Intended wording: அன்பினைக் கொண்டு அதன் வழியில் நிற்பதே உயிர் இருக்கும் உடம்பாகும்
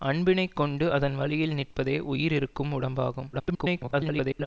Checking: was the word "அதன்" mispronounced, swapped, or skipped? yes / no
no